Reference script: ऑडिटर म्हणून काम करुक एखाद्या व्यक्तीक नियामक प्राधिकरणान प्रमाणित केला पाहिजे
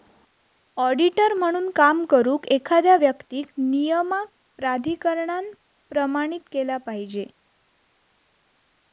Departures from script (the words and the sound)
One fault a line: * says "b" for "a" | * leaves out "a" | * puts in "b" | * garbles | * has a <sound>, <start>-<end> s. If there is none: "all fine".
all fine